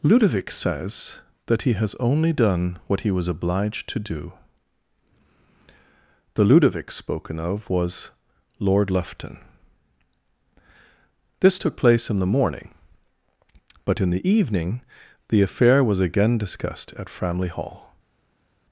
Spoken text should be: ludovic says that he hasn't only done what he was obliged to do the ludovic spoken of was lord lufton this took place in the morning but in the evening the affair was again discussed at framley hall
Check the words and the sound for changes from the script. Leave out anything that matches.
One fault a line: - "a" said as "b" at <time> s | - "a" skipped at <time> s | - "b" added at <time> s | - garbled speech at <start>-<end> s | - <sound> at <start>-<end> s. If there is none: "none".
- "hasn't" said as "has" at 1.7 s